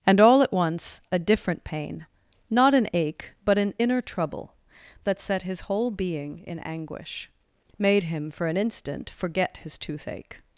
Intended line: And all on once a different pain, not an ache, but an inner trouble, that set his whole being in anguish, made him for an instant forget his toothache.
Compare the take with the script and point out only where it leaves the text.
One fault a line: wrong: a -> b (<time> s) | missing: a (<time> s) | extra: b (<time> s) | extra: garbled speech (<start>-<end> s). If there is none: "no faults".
wrong: on -> at (0.4 s)